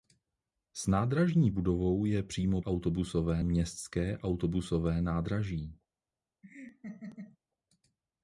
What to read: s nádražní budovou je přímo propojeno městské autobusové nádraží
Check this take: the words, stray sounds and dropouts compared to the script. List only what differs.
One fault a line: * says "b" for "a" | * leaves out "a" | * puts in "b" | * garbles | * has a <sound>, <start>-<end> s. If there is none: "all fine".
* says "autobusové" for "propojeno"
* has a laugh, 6.4-7.4 s